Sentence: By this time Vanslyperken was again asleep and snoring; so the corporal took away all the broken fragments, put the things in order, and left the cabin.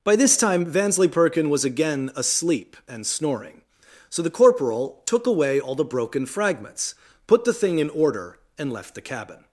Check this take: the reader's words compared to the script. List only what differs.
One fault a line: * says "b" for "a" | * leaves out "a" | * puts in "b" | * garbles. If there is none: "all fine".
* says "thing" for "things"